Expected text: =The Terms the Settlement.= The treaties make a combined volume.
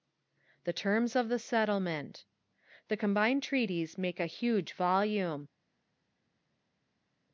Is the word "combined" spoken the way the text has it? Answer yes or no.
no